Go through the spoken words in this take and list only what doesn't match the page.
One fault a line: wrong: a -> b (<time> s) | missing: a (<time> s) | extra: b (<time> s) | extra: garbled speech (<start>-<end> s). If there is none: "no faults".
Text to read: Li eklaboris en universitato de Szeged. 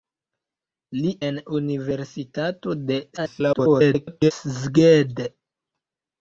missing: eklaboris (1.1 s)
extra: garbled speech (3.2-4.3 s)